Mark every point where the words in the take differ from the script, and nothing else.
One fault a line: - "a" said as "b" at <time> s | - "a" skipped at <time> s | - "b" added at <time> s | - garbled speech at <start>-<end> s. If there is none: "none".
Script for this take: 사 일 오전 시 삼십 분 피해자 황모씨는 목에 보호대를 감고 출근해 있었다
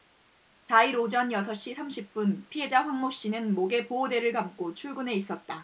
- "여섯" added at 1.3 s